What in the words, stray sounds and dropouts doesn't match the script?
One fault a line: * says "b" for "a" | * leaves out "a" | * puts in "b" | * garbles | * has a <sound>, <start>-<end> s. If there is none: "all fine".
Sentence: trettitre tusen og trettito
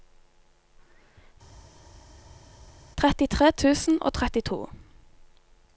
all fine